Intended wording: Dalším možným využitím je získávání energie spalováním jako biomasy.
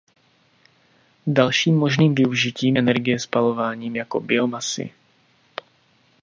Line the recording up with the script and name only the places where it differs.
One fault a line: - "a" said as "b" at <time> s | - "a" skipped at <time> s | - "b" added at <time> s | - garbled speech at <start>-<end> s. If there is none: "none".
- "je získávání" skipped at 2.8 s